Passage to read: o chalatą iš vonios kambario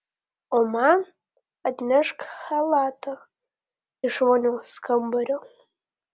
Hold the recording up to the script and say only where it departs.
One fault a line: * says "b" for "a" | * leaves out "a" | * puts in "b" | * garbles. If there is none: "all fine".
* puts in "man atnešk"